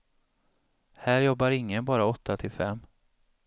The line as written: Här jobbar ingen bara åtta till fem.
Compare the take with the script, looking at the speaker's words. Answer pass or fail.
pass